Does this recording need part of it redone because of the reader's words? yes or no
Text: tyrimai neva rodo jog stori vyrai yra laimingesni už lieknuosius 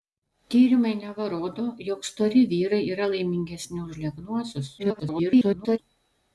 yes